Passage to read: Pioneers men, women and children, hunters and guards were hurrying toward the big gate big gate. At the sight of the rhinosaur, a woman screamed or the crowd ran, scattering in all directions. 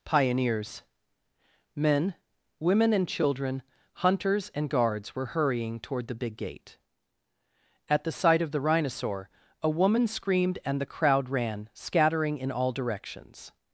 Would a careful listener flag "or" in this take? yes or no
yes